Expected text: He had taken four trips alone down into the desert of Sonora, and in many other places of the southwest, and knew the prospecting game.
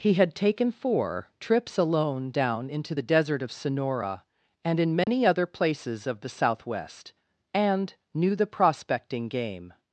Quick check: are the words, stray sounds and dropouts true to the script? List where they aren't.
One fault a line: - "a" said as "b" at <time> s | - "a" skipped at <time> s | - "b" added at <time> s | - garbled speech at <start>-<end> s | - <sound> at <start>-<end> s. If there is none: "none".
- dropout at 5.0-5.1 s